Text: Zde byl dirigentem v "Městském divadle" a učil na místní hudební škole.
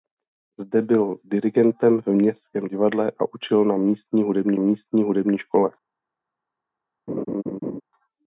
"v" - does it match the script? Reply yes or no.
yes